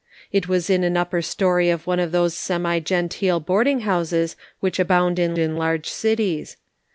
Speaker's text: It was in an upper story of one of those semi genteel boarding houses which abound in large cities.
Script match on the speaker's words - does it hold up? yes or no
no